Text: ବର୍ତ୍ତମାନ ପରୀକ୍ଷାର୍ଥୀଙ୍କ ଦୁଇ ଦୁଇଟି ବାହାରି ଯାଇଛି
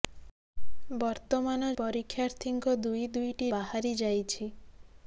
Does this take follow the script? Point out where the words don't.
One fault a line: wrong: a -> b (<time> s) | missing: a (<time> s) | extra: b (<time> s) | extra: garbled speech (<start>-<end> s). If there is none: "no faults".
no faults